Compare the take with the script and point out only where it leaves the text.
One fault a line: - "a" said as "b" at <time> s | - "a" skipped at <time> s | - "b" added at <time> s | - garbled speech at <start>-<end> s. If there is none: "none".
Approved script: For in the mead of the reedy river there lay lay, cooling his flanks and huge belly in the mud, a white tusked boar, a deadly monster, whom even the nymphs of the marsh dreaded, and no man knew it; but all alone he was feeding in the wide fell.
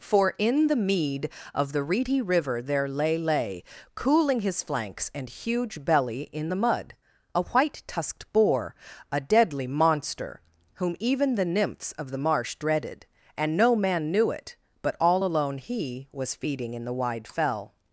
none